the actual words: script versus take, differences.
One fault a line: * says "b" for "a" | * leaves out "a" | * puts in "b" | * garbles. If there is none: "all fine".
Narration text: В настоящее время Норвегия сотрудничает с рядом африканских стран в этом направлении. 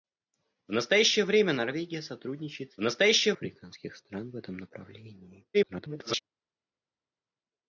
* says "настоящее" for "рядом"
* garbles